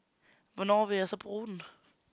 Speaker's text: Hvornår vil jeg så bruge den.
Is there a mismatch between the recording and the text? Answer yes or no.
no